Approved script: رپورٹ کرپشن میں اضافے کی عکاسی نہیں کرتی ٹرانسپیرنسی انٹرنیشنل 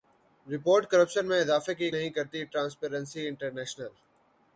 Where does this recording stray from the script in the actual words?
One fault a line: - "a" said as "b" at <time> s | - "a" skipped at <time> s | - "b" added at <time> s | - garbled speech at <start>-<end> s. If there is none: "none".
- "عکاسی" skipped at 1.9 s